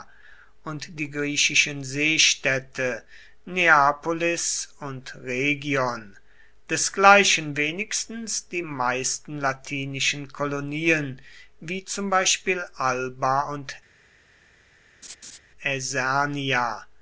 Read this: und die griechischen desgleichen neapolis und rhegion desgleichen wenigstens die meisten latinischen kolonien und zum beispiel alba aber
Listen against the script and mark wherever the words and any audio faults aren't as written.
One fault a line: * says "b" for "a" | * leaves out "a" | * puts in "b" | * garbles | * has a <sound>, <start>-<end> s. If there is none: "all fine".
* says "seestädte" for "desgleichen"
* says "wie" for "und"
* says "und" for "aber"
* has a laugh, 15.0-15.4 s